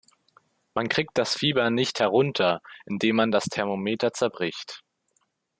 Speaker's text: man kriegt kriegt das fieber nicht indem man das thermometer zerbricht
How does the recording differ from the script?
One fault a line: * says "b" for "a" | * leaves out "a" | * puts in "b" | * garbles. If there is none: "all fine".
* leaves out "kriegt"
* puts in "herunter"